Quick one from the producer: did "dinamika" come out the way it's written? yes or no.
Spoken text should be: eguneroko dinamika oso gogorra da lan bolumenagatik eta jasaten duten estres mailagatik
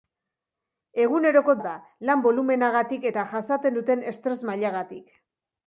no